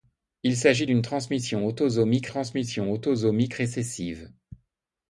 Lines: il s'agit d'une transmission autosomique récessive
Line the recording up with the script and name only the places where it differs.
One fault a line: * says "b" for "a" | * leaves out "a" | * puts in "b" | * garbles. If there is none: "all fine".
* puts in "transmission autosomique"